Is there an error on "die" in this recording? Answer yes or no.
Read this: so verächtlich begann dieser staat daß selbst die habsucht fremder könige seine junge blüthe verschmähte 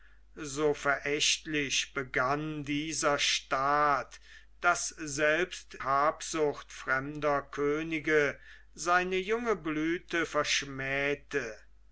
yes